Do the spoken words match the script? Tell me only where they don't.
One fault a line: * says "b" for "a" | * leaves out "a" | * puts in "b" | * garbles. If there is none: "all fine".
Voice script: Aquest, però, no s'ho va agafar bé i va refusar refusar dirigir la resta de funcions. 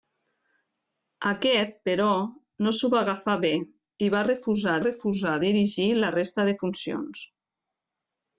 all fine